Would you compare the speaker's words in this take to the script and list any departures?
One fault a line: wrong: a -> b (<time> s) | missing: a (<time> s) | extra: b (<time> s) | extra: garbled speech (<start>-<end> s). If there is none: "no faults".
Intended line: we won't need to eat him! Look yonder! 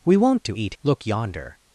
missing: need (0.5 s)
missing: him (0.7 s)